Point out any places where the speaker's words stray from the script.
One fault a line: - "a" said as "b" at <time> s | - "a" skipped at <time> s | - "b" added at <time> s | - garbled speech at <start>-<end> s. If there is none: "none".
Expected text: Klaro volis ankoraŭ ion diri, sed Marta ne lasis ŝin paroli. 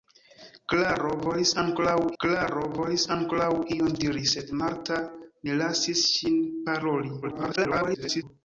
- "klaro volis ankoraŭ" added at 2.2 s
- garbled speech at 7.2-8.2 s